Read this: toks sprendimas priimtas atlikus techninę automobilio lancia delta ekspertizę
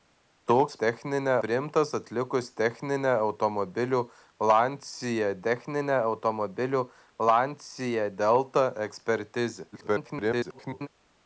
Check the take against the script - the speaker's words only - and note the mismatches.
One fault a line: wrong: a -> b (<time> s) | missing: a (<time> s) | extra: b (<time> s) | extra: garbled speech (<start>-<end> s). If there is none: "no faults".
wrong: sprendimas -> techninę (0.8 s)
extra: techninę automobilio lancia (5.5 s)
extra: garbled speech (9.7-10.9 s)